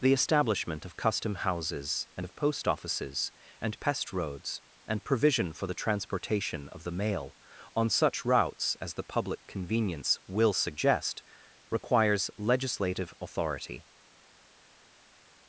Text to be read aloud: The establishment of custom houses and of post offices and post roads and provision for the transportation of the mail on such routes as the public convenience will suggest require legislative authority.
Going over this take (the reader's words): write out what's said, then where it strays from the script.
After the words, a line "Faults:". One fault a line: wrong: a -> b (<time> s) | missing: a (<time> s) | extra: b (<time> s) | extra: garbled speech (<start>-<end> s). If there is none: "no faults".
The establishment of custom houses and of post offices and pest roads and provision for the transportation of the mail on such routes as the public convenience will suggest requires legislative authority.
Faults:
wrong: post -> pest (3.8 s)
wrong: require -> requires (11.7 s)